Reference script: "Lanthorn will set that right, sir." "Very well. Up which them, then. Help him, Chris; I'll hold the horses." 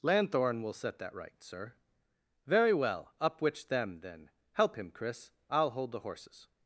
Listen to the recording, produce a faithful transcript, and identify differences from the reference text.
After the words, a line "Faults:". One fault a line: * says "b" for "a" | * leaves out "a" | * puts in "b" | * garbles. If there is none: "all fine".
"Lanthorn will set that right, sir." "Very well. Up which them, then. Help him, Chris; I'll hold the horses."
Faults:
all fine